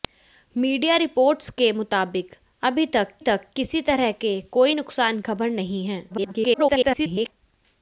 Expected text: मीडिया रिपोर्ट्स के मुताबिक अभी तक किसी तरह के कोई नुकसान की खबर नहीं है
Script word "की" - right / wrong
wrong